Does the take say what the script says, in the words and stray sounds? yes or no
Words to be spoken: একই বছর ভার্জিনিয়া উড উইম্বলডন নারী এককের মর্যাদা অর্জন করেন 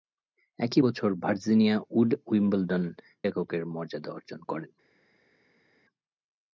no